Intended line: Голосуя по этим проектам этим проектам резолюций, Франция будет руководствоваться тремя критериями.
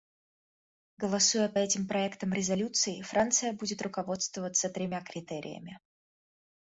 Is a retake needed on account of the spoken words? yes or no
yes